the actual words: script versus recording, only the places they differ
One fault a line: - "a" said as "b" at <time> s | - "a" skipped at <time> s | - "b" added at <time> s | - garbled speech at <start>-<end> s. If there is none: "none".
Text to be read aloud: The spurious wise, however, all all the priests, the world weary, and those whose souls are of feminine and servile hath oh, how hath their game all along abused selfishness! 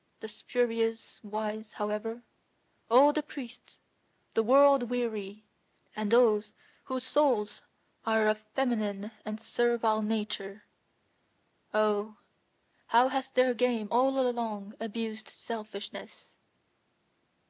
- "all" skipped at 3.1 s
- "hath" said as "nature" at 10.0 s